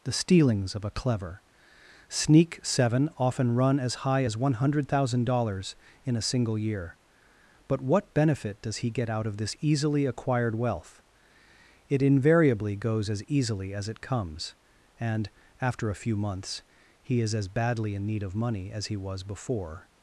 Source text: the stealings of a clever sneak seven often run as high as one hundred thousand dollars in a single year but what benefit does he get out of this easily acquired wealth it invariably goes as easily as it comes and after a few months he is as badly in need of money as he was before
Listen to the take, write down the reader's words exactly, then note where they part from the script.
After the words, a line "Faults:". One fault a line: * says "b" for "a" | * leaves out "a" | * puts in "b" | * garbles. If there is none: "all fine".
the stealings of a clever sneak seven often run as high as one hundred thousand dollars in a single year but what benefit does he get out of this easily acquired wealth it invariably goes as easily as it comes and after a few months he is as badly in need of money as he was before
Faults:
all fine